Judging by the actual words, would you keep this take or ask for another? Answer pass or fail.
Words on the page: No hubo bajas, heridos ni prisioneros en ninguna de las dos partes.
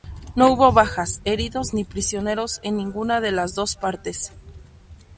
pass